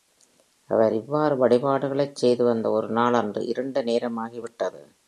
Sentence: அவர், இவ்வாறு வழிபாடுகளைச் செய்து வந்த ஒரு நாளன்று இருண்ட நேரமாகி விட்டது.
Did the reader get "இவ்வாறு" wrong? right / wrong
right